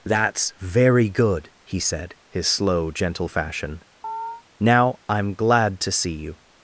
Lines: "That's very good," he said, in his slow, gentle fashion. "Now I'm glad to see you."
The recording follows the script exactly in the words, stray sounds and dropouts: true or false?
false